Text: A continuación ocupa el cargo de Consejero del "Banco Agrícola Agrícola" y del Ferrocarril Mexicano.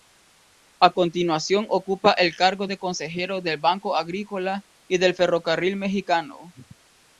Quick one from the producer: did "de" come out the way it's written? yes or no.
yes